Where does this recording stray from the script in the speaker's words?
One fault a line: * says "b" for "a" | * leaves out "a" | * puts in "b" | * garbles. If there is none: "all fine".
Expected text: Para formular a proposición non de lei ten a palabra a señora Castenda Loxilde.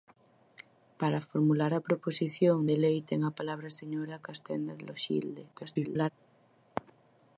* leaves out "non"
* garbles